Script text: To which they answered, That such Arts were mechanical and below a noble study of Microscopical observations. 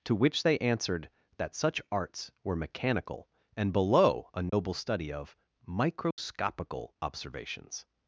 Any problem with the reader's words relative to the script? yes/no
no